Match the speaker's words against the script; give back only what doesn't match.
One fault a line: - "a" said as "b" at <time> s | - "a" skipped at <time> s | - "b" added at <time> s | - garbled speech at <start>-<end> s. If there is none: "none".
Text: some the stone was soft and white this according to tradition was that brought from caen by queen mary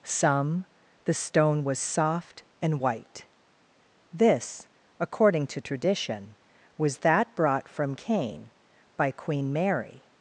none